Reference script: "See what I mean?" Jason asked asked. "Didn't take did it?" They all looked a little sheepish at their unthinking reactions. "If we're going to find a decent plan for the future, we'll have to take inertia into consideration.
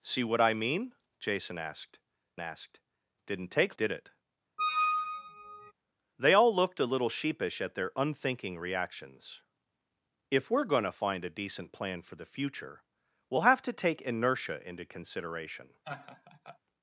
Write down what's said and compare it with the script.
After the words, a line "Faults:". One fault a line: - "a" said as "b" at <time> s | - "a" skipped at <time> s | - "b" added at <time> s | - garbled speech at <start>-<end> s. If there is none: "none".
"See what I mean?" Jason asked asked. "Didn't take did it?" They all looked a little sheepish at their unthinking reactions. "If we're going to find a decent plan for the future, we'll have to take inertia into consideration.
Faults:
none